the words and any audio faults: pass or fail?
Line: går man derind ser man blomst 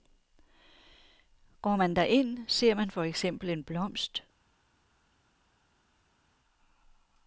fail